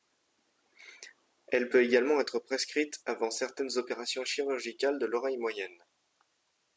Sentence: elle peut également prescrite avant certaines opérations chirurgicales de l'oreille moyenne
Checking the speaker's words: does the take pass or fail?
fail